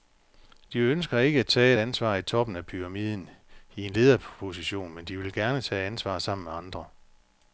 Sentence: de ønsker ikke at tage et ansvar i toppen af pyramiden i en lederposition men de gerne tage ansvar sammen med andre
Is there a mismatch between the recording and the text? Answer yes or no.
yes